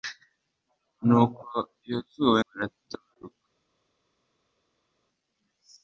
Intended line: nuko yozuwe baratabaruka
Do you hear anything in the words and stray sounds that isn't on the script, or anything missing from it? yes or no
no